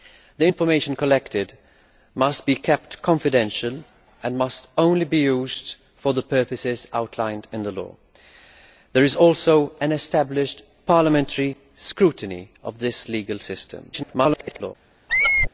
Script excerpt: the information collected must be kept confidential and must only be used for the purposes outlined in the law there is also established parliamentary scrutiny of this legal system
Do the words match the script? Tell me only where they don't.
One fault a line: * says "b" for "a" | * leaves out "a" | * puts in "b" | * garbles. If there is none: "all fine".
* garbles